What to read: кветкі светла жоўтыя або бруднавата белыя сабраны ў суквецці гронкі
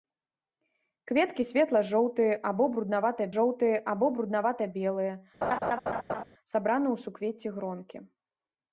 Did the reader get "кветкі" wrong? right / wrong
right